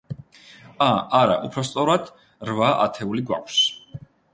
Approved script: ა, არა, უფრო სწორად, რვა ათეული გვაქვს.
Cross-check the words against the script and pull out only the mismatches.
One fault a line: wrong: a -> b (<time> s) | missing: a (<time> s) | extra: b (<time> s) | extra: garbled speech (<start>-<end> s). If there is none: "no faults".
no faults